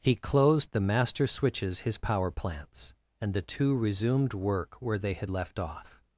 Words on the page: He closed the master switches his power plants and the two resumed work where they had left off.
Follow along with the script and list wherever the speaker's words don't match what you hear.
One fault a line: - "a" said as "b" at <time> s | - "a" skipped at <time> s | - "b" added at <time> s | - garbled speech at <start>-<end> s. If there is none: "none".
none